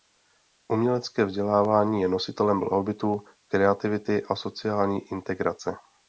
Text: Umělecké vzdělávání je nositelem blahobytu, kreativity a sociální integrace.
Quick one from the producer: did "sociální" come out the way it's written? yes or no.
yes